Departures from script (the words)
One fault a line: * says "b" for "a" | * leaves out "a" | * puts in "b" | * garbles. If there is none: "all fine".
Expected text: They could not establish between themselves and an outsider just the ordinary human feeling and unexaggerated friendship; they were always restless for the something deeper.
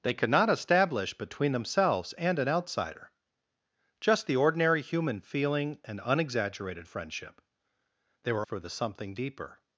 * leaves out "always restless"